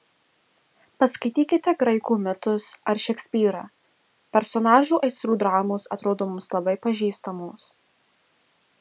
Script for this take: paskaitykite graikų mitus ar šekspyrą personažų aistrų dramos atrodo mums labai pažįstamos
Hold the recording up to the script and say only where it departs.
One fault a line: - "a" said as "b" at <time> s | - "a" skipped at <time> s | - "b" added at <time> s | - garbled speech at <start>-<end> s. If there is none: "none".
none